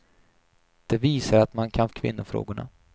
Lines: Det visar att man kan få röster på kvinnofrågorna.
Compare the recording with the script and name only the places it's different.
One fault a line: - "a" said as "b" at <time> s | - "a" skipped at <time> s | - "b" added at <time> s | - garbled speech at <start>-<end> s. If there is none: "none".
- "få röster på" skipped at 1.9 s